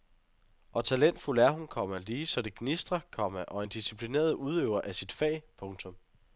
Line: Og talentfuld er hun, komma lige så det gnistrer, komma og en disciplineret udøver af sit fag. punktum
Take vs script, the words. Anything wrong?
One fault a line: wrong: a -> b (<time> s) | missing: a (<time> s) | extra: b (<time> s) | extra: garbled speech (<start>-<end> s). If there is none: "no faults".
no faults